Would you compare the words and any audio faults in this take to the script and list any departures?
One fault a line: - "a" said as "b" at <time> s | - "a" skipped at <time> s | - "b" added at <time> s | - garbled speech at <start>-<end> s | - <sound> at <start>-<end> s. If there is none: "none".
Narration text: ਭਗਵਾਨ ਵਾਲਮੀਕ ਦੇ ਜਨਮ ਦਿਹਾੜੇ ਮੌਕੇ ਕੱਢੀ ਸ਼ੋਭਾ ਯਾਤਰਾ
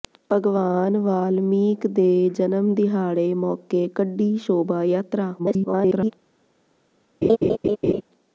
- garbled speech at 5.4-6.1 s
- laugh at 7.2-8.0 s